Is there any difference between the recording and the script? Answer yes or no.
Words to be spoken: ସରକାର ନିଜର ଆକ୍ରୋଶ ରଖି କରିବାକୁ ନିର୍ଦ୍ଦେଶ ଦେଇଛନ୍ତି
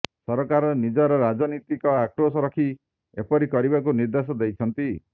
yes